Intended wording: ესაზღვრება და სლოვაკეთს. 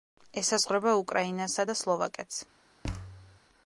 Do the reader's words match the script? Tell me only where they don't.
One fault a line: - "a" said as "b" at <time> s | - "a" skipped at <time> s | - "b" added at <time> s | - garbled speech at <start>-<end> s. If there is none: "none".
- "უკრაინასა" added at 1.0 s